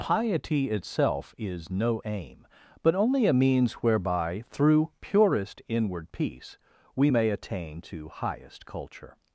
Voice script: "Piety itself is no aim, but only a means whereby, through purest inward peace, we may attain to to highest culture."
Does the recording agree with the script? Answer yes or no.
no